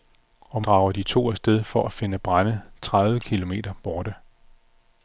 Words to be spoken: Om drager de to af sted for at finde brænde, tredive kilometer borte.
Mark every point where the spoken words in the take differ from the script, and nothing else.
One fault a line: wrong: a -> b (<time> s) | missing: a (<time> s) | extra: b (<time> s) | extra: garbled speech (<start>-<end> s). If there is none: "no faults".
no faults